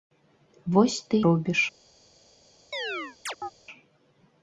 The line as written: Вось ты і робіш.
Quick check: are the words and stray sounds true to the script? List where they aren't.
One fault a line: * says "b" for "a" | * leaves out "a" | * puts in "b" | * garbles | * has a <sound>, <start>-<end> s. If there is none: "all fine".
* leaves out "і"
* has a chirp, 2.7-3.5 s